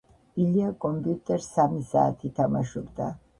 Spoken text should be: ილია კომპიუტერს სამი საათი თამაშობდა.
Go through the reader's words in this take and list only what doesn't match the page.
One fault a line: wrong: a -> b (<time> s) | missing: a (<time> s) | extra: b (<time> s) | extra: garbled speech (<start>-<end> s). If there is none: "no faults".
no faults